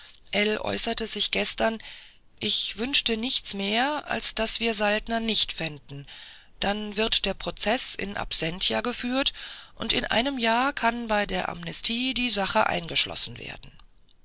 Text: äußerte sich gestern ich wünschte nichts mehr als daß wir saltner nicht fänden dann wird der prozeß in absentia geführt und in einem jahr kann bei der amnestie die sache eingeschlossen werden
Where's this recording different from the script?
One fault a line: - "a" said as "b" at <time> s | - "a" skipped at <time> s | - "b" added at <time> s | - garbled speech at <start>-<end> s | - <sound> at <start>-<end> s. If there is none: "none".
none